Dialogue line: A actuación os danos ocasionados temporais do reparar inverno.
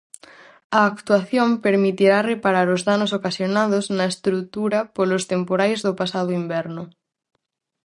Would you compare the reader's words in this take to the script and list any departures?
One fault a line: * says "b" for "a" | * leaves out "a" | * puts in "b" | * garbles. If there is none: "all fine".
* puts in "permitirá reparar"
* puts in "na estrutura polos"
* says "pasado" for "reparar"